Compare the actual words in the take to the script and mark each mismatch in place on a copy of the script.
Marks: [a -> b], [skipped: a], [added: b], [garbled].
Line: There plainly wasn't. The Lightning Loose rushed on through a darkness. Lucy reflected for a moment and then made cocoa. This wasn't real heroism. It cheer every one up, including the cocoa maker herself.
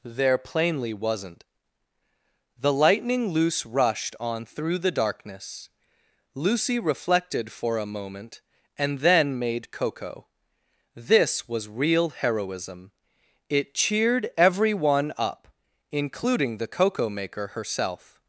There plainly wasn't. The Lightning Loose rushed on through [a -> the] darkness. Lucy reflected for a moment and then made cocoa. This [wasn't -> was] real heroism. It [cheer -> cheered] every one up, including the cocoa maker herself.